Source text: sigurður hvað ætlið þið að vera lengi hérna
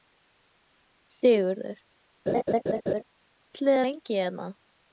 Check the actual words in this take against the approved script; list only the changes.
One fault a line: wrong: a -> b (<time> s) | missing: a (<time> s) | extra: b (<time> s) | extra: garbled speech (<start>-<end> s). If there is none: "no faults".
missing: hvað (1.8 s)
missing: að vera (3.8 s)